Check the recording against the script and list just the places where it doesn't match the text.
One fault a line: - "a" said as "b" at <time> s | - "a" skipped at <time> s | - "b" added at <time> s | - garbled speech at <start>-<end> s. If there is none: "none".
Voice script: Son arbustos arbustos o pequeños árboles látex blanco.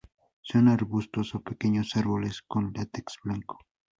- "arbustos" skipped at 1.4 s
- "con" added at 2.5 s